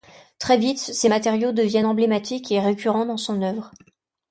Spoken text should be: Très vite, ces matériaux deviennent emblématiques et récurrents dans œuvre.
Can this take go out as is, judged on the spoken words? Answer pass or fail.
fail